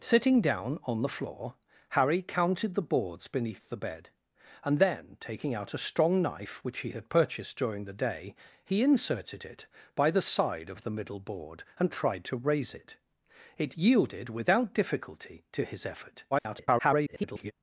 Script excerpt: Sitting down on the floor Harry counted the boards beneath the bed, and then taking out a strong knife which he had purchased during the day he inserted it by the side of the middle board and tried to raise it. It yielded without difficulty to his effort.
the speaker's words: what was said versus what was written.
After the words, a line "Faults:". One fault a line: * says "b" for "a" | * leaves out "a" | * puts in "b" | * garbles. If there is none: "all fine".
Sitting down on the floor Harry counted the boards beneath the bed, and then taking out a strong knife which he had purchased during the day he inserted it by the side of the middle board and tried to raise it. It yielded without difficulty to his effort. [garbled]
Faults:
* garbles